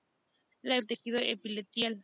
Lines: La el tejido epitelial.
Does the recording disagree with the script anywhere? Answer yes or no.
no